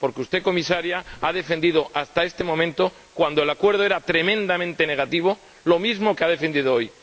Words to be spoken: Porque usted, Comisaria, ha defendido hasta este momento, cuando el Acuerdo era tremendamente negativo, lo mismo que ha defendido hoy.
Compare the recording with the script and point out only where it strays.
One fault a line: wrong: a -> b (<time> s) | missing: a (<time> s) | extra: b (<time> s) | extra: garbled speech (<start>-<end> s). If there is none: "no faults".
no faults